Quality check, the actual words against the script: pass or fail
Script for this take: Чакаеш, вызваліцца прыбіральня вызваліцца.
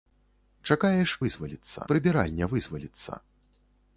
pass